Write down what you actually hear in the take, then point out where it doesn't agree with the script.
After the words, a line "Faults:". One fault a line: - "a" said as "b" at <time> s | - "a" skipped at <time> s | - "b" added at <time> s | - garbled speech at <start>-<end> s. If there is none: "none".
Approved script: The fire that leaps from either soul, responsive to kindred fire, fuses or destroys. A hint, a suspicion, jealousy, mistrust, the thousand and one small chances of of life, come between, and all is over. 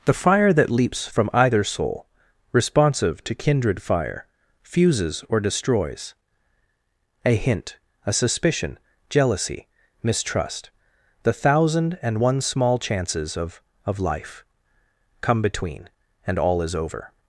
The fire that leaps from either soul, responsive to kindred fire, fuses or destroys. A hint, a suspicion, jealousy, mistrust, the thousand and one small chances of of life, come between, and all is over.
Faults:
none